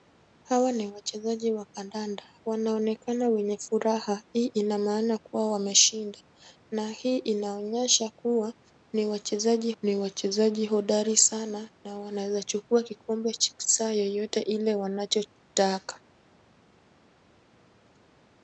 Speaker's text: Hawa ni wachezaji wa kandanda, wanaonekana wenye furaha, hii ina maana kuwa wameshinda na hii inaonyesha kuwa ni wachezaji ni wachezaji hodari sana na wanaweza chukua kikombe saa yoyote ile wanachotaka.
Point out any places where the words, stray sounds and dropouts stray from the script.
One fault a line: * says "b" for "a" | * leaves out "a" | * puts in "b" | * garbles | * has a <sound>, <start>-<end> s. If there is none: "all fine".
all fine